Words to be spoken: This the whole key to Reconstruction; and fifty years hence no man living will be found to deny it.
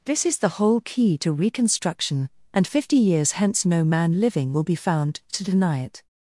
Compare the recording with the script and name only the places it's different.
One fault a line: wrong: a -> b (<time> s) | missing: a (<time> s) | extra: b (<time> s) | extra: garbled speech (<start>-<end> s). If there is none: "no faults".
extra: is (0.2 s)